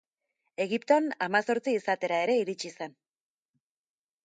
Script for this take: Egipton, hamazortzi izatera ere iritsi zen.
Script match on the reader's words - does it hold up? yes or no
yes